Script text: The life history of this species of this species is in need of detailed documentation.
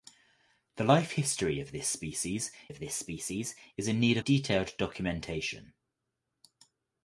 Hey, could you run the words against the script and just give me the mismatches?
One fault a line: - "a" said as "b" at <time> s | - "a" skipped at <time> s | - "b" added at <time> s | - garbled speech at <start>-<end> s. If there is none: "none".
none